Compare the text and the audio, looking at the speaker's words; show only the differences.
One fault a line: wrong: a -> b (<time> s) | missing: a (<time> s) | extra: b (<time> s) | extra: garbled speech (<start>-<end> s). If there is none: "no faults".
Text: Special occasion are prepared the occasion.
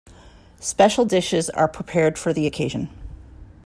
wrong: occasion -> dishes (1.0 s)
extra: for (2.2 s)